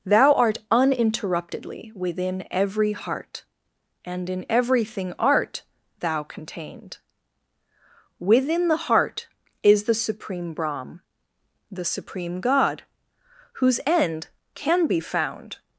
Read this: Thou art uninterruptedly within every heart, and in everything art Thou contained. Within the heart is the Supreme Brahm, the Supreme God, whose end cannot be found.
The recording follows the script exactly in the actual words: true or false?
false